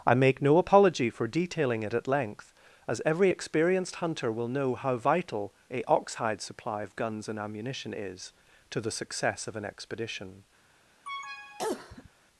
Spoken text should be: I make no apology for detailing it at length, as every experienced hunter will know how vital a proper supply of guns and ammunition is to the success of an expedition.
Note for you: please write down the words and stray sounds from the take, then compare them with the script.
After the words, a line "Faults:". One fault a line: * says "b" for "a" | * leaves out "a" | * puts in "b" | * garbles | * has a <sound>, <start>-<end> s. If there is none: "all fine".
I make no apology for detailing it at length, as every experienced hunter will know how vital a oxhide supply of guns and ammunition is to the success of an expedition.
Faults:
* says "oxhide" for "proper"
* has a cough, 11.0-12.1 s